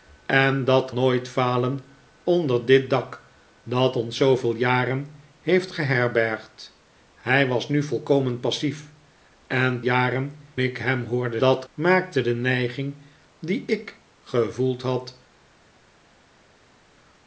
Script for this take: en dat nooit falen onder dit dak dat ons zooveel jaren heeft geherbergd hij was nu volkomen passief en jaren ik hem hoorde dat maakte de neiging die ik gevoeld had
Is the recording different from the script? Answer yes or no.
no